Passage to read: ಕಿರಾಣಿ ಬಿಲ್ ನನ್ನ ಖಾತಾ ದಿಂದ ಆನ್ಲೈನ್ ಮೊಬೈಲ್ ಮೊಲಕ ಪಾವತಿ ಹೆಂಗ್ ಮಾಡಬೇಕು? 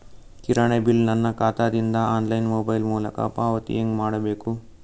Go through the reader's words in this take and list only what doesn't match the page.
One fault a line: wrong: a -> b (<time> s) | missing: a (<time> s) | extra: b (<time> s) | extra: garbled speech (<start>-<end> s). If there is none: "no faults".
no faults